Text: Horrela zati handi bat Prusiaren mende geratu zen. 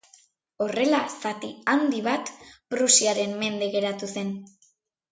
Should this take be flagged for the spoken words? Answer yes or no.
no